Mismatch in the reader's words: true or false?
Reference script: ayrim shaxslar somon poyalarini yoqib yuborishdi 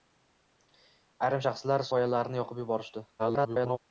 true